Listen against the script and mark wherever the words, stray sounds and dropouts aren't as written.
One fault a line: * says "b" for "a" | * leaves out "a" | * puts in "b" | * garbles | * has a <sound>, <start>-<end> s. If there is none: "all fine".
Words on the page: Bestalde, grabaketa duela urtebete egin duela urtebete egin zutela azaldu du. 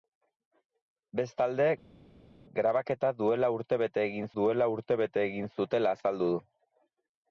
all fine